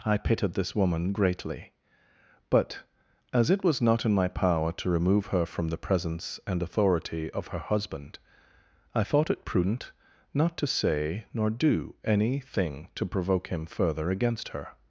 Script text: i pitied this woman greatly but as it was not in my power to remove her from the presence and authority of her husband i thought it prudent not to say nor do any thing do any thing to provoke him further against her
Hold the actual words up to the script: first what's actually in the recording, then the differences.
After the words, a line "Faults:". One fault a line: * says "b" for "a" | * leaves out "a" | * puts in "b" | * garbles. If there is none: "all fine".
i pitied this woman greatly but as it was not in my power to remove her from the presence and authority of her husband i thought it prudent not to say nor do any thing to provoke him further against her
Faults:
* leaves out "do any thing"